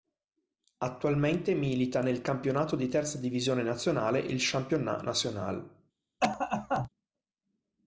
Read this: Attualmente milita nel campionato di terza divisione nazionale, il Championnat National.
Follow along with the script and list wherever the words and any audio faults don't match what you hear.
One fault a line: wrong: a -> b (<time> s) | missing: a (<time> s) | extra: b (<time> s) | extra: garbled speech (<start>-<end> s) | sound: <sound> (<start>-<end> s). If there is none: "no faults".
sound: cough (6.2-6.9 s)